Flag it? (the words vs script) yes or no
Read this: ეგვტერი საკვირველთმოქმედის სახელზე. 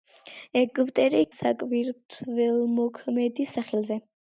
no